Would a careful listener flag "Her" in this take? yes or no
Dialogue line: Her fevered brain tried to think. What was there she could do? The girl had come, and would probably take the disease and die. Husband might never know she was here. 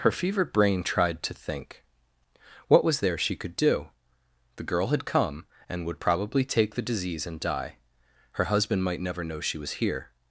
no